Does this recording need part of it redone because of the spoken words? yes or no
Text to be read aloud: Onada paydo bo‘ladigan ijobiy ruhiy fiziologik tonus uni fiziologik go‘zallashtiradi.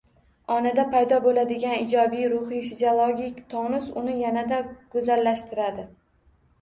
yes